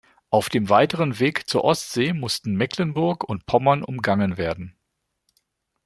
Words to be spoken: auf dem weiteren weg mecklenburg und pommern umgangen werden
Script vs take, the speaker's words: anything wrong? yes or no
yes